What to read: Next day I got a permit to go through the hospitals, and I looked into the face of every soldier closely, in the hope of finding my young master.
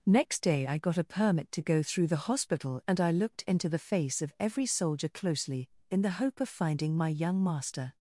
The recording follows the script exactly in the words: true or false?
false